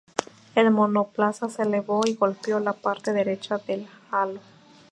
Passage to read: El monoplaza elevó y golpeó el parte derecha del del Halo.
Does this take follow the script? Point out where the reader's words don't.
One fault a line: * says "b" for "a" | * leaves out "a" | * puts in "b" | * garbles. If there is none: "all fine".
* puts in "se"
* says "la" for "el"
* leaves out "del"